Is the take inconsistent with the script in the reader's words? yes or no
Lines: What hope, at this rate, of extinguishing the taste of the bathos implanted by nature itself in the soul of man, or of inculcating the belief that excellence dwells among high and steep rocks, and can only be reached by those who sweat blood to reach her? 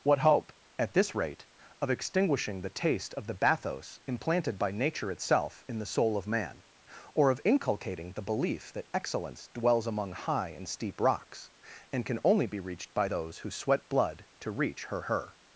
yes